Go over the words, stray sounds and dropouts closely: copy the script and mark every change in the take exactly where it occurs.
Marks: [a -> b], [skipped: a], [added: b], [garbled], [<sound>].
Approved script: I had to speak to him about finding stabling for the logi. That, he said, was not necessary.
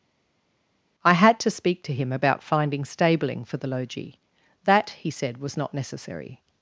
I had to speak to him about finding stabling for the logi. That, he said, was not necessary.